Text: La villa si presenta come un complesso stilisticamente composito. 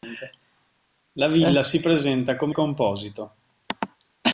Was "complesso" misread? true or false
true